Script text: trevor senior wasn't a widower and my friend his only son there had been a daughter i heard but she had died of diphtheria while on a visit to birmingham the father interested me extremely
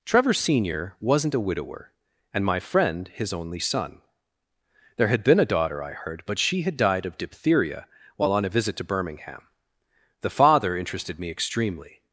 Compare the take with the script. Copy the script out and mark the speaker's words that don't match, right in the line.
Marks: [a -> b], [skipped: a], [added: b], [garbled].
trevor senior wasn't a widower and my friend his only son there had been a daughter i heard but she had died of diphtheria while on a visit to birmingham the father interested me extremely